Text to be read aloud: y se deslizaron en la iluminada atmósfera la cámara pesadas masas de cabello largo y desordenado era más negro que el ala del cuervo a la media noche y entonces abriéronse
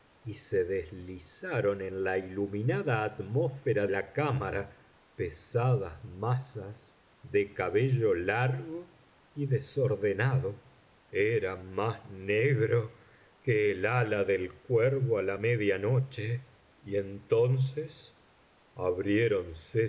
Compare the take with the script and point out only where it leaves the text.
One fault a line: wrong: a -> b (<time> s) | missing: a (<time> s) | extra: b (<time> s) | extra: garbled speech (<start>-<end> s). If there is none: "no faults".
no faults